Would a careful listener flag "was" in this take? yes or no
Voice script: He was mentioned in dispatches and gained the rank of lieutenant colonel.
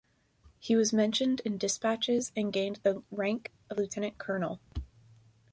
no